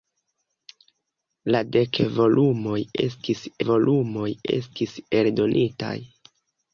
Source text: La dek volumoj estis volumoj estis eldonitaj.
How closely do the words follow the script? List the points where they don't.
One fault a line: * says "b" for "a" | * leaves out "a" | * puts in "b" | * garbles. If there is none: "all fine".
all fine